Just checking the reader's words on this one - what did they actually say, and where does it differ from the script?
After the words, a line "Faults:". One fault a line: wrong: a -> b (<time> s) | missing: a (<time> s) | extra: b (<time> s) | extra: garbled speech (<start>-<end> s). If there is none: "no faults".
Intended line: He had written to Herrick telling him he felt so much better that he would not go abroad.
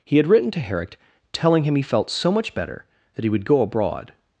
He had written to Herrick telling him he felt so much better that he would go abroad.
Faults:
missing: not (3.5 s)